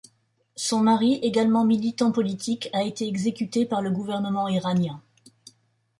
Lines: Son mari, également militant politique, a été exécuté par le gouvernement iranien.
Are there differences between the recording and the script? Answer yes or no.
no